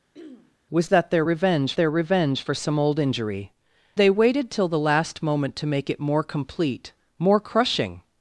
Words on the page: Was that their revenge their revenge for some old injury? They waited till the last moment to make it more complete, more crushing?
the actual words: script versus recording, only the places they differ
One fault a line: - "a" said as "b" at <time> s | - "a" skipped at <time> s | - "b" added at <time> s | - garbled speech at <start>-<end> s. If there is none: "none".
none